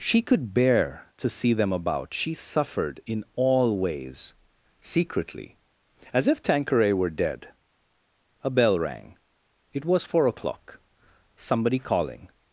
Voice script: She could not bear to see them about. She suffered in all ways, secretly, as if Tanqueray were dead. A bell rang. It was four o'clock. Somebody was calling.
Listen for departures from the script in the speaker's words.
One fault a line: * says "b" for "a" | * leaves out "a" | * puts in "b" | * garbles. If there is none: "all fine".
* leaves out "not"
* leaves out "was"